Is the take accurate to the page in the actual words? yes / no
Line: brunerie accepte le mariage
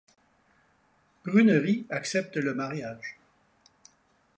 yes